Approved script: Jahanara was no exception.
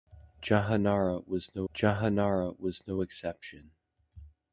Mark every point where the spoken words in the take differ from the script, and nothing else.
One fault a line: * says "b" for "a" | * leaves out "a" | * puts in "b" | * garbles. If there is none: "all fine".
* puts in "jahanara was no"